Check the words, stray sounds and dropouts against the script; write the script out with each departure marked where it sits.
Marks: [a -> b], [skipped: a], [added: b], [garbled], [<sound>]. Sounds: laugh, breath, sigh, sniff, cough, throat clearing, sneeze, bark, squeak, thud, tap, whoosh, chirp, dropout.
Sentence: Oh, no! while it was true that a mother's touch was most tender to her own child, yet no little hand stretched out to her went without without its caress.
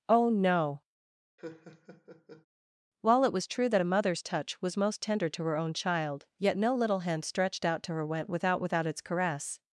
Oh, no! [laugh] while it was true that a mother's touch was most tender to her own child, yet no little hand stretched out to her went without without its caress.